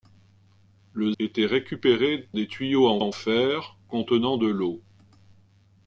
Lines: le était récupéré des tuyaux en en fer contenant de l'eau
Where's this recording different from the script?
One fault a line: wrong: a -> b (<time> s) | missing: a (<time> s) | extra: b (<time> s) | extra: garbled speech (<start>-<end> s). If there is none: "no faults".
no faults